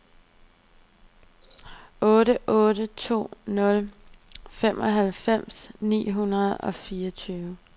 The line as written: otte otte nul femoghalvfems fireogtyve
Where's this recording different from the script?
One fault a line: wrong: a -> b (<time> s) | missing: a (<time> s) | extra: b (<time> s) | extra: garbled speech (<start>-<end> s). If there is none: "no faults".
extra: to (2.9 s)
extra: ni hundrede og (5.8 s)